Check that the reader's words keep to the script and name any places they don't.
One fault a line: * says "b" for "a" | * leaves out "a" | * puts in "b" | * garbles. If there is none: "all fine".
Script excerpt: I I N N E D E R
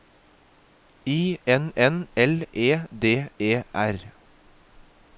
* says "N" for "I"
* says "L" for "N"